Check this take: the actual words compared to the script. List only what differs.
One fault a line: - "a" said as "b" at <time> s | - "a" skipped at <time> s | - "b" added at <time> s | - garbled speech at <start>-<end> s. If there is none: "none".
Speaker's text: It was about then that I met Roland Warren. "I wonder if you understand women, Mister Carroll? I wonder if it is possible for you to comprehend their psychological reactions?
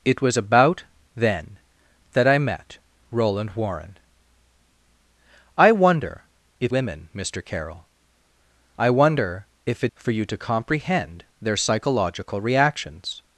- "you understand" skipped at 6.8 s
- "is possible" skipped at 9.9 s